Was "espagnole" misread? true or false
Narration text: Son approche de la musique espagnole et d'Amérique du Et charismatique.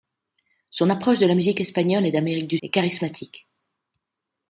false